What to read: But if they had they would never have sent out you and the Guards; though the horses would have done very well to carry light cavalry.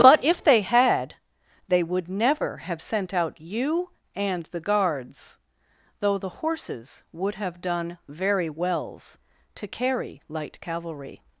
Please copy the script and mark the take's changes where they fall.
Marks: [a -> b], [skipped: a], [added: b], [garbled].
But if they had they would never have sent out you and the Guards; though the horses would have done very [well -> wells] to carry light cavalry.